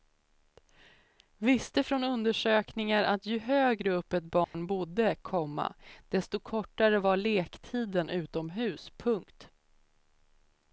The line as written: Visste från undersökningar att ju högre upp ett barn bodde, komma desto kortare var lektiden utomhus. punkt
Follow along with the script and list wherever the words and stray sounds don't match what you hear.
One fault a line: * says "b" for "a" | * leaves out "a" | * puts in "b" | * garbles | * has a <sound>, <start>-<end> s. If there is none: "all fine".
* has a dropout, 4.4-4.5 s